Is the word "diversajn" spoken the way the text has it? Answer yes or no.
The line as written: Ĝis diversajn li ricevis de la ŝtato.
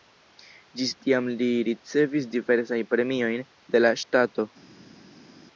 no